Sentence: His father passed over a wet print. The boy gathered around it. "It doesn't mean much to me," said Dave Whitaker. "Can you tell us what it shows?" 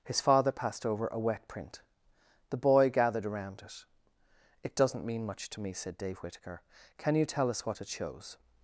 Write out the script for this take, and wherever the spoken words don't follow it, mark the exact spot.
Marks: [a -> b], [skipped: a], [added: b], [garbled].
His father passed over a wet print. The boy gathered around it. "It doesn't mean much to me," said Dave Whitaker. "Can you tell us what it shows?"